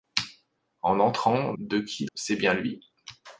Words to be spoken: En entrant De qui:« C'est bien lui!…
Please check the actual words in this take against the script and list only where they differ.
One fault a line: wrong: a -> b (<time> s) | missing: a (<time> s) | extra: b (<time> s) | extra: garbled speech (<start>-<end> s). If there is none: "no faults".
no faults